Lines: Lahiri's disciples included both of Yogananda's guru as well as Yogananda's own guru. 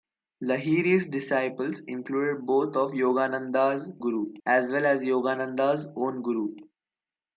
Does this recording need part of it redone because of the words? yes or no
no